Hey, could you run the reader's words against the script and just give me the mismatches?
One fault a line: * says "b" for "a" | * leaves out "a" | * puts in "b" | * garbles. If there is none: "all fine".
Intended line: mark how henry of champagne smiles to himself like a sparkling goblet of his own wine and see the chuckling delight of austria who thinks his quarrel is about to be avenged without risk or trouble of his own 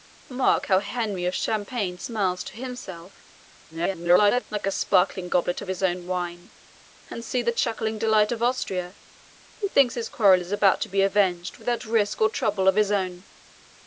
* garbles